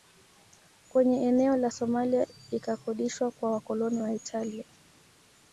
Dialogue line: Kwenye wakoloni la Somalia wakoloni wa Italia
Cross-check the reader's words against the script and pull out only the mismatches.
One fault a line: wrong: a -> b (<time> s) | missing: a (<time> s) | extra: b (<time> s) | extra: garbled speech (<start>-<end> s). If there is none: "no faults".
wrong: wakoloni -> eneo (1.3 s)
extra: ikakodishwa kwa (2.5 s)